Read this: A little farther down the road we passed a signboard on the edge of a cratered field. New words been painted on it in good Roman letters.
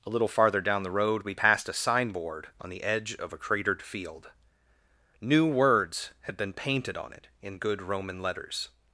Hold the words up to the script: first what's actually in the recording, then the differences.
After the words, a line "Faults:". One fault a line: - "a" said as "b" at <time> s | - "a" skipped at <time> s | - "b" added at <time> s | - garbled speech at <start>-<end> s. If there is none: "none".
A little farther down the road we passed a signboard on the edge of a cratered field. New words had been painted on it in good Roman letters.
Faults:
- "had" added at 6.2 s